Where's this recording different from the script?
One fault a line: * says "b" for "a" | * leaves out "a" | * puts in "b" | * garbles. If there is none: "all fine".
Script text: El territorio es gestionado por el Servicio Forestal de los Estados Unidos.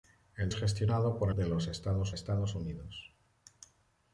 * leaves out "territorio"
* leaves out "el Servicio Forestal"
* puts in "Estados"